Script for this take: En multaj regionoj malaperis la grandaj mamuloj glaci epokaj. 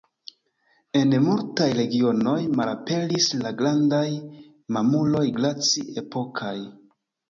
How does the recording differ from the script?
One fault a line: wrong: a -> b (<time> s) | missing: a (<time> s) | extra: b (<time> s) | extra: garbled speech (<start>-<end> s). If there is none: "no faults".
no faults